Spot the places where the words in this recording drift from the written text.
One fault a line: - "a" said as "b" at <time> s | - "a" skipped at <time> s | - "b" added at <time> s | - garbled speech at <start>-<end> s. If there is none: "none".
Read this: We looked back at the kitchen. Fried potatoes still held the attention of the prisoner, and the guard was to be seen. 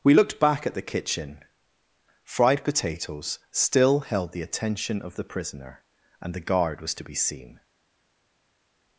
none